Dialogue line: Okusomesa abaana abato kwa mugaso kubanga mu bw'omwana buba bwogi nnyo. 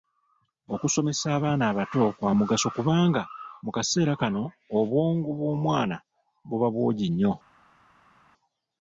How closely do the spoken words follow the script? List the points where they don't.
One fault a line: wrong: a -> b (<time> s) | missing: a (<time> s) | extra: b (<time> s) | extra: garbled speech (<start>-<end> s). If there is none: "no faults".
extra: kaseera kano obwongo (3.8 s)